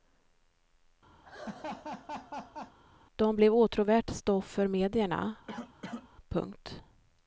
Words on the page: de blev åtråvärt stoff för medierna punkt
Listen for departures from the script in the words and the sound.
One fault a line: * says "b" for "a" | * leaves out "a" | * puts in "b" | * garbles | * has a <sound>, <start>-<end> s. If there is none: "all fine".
* has a laugh, 1.2-2.8 s
* has a cough, 5.5-6.1 s